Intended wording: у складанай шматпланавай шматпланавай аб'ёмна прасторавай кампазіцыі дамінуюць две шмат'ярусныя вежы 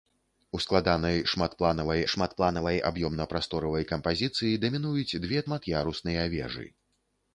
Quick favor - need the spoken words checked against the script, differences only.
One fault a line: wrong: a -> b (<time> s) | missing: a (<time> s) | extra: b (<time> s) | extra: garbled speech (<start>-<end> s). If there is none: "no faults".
no faults